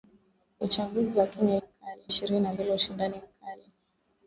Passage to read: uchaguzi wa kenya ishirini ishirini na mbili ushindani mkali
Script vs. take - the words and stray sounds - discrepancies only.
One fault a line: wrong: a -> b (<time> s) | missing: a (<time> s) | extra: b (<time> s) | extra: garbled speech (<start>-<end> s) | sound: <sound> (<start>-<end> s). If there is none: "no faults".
wrong: ishirini -> mkali (1.6 s)